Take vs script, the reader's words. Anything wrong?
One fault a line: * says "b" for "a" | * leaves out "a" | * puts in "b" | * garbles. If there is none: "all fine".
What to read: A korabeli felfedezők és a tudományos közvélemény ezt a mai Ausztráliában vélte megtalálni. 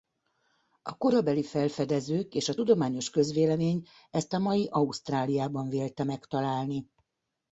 all fine